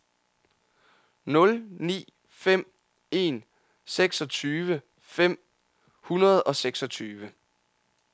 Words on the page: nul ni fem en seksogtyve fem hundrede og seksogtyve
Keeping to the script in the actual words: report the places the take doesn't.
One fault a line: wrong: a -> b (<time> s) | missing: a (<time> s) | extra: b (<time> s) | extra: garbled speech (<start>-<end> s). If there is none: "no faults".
no faults